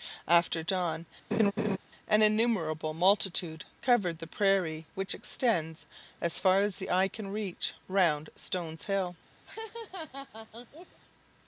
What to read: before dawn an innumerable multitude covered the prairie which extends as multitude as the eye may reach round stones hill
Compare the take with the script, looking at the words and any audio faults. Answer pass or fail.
fail